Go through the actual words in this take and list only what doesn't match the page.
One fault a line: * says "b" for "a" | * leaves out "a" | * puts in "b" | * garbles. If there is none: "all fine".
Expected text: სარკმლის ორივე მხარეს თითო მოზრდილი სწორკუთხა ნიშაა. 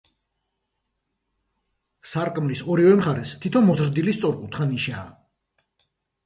all fine